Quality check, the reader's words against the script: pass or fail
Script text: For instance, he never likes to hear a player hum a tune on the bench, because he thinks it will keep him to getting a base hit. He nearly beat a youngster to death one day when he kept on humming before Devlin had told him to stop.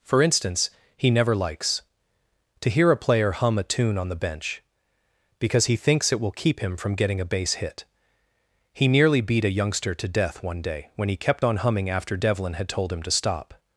fail